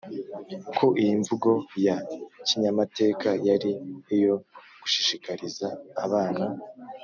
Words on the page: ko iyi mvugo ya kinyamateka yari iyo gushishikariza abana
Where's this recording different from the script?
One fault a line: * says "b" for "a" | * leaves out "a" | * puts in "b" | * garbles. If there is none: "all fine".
all fine